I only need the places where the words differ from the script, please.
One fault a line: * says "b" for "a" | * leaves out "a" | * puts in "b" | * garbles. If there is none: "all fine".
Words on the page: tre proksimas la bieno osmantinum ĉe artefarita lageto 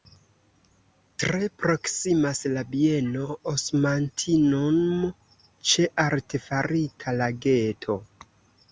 all fine